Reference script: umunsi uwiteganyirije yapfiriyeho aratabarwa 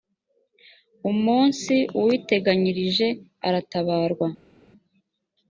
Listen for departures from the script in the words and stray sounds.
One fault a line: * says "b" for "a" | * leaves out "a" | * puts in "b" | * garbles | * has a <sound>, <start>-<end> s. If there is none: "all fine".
* leaves out "yapfiriyeho"